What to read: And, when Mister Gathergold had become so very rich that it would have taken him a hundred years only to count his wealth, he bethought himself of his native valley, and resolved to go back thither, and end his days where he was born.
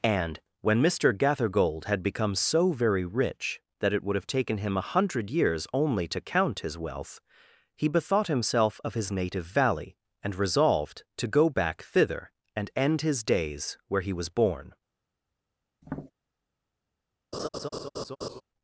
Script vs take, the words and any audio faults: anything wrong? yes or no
yes